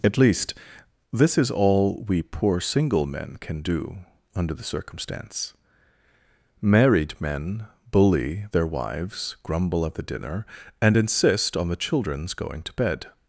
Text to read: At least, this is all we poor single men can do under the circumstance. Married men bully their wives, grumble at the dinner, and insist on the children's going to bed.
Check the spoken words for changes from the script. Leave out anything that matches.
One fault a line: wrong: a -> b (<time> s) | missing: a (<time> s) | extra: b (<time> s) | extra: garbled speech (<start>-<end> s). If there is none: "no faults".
no faults